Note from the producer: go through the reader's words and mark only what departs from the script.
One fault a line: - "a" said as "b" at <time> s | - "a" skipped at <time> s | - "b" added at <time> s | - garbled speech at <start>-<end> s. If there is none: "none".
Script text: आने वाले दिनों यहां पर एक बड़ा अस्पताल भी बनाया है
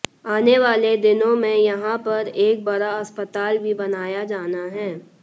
- "में" added at 1.4 s
- "जाना" added at 4.3 s